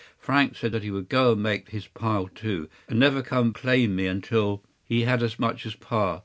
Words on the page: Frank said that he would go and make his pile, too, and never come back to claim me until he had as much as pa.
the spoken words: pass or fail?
fail